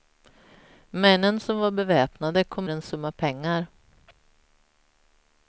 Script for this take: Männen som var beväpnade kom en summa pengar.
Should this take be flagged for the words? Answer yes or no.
no